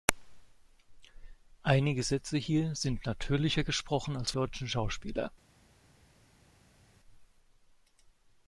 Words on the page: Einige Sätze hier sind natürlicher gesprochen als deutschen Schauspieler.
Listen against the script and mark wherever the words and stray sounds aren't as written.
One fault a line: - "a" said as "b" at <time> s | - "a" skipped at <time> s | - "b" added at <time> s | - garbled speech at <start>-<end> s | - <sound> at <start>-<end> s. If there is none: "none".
none